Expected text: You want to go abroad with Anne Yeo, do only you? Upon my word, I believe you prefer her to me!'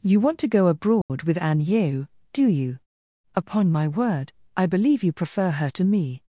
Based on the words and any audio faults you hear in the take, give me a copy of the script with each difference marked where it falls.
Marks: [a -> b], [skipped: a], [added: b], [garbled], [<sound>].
You want to go abroad [dropout] with Anne Yeo, do [skipped: only] you? Upon my word, I believe you prefer her to me!'